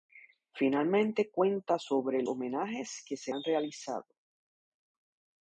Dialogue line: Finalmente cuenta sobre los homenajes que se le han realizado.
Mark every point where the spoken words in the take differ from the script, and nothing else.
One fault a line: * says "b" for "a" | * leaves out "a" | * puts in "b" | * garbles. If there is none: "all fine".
* leaves out "los"
* leaves out "le"